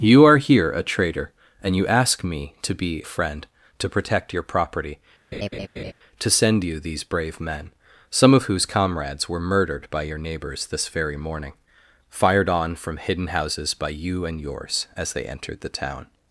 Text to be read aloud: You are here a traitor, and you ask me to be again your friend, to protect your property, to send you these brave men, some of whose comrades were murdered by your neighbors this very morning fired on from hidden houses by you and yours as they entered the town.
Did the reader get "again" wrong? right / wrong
wrong